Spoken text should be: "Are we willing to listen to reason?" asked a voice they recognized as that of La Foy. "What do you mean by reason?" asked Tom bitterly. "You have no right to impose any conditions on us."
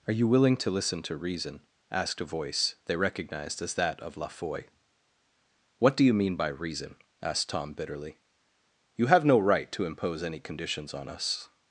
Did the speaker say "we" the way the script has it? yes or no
no